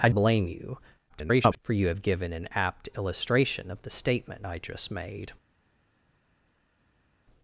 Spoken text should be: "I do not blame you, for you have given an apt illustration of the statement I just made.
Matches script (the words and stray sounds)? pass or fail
fail